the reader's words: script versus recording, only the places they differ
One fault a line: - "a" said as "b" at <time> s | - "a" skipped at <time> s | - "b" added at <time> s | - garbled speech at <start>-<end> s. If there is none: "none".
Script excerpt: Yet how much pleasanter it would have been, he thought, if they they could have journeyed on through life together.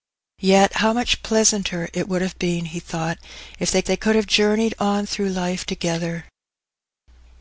none